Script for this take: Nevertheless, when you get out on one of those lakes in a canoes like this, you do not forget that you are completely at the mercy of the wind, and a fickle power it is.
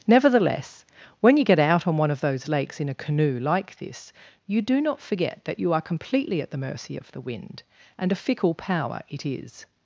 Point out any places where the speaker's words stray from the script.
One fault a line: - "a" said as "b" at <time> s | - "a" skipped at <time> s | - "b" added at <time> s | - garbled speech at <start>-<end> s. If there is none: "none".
- "canoes" said as "canoe" at 3.0 s